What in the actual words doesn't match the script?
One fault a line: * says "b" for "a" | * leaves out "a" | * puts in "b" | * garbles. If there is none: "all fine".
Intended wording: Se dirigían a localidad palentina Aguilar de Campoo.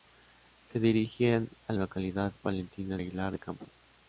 all fine